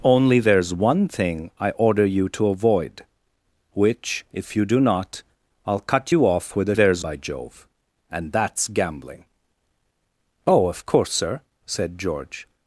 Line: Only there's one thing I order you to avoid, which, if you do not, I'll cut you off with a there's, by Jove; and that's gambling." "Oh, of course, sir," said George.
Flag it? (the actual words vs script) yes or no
no